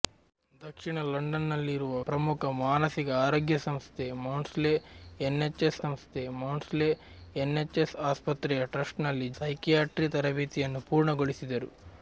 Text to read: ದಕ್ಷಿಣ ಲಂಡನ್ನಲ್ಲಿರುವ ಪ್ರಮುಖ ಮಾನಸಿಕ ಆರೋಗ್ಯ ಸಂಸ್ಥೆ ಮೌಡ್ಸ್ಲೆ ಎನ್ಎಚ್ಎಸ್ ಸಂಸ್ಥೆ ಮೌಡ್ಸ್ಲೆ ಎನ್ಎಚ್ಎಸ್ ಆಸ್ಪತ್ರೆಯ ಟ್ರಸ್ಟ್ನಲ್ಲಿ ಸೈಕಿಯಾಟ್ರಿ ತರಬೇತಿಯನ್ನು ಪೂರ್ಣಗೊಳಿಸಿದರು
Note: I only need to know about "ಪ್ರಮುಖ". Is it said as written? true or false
true